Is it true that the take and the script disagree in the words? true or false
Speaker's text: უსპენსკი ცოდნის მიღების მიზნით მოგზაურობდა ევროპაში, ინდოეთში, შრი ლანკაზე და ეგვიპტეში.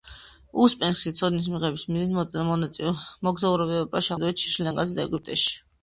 false